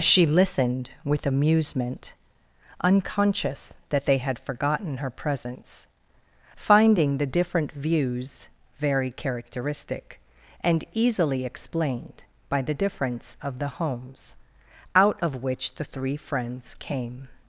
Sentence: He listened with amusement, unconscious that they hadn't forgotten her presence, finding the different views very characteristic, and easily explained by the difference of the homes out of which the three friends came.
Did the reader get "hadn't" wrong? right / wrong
wrong